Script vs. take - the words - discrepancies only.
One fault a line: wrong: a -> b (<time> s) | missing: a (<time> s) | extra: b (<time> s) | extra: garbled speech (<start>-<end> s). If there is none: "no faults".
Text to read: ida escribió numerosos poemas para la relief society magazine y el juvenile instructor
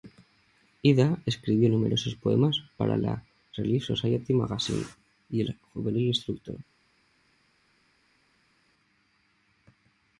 no faults